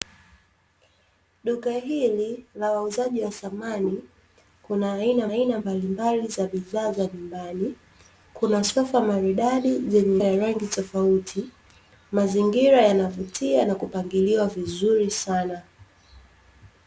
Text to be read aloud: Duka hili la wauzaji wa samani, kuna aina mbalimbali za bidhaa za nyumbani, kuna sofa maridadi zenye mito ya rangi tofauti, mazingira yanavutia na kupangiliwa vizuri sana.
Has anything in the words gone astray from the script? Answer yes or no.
yes